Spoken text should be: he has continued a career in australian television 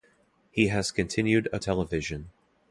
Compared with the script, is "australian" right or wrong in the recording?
wrong